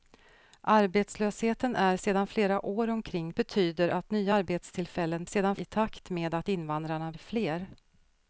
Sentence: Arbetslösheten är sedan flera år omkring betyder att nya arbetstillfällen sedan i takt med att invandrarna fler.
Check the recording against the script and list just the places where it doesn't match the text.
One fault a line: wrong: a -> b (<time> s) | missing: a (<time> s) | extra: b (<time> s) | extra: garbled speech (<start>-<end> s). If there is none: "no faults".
no faults